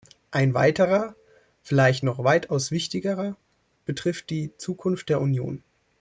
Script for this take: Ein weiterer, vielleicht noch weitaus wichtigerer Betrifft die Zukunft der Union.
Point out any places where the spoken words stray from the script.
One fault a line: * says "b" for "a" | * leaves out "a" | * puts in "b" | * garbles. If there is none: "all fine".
all fine